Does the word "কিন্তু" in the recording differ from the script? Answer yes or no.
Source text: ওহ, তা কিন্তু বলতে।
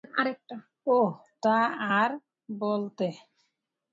yes